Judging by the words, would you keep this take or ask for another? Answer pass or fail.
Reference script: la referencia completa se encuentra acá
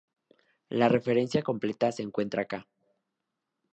pass